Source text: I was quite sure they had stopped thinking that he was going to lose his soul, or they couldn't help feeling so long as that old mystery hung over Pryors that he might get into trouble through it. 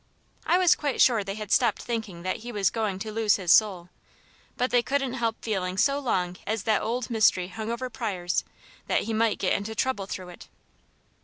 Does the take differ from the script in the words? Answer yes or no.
yes